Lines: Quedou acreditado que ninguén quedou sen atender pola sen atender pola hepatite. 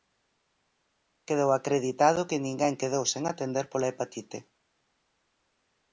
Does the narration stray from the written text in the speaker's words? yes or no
yes